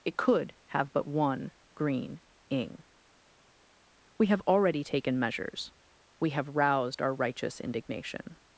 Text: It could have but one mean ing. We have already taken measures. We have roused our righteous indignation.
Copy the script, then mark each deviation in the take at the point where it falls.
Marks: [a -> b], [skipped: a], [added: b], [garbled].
It could have but one [mean -> green] ing. We have already taken measures. We have roused our righteous indignation.